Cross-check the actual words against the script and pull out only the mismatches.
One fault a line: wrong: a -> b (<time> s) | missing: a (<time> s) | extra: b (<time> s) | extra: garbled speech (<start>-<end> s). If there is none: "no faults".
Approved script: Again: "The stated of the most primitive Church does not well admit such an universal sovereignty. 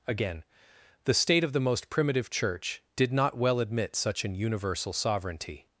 wrong: stated -> state (1.1 s)
wrong: does -> did (3.0 s)